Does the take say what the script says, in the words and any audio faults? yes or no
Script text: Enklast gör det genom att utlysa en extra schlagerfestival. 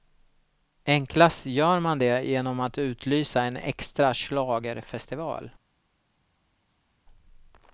no